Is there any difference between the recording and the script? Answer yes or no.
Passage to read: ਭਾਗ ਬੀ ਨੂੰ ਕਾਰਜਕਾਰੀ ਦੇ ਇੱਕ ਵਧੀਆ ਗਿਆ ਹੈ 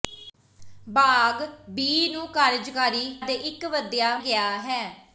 no